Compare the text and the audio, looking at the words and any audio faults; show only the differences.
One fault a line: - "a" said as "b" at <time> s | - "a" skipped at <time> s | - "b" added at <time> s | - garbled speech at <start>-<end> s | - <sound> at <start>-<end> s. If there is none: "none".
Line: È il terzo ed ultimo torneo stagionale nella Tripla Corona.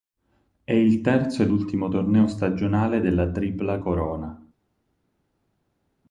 - "nella" said as "della" at 3.0 s